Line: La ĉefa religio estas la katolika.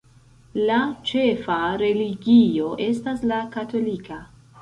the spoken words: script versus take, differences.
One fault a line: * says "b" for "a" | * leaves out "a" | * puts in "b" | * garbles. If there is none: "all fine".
all fine